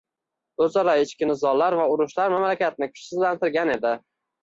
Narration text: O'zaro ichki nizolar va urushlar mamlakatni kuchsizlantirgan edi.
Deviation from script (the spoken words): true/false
false